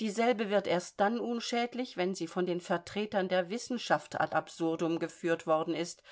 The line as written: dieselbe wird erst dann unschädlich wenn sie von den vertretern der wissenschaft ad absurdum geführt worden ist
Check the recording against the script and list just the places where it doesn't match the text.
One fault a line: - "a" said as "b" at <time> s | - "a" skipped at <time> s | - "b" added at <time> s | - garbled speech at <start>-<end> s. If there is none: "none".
none